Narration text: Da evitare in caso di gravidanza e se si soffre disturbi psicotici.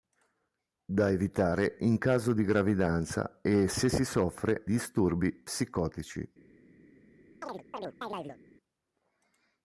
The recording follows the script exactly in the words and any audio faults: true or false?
false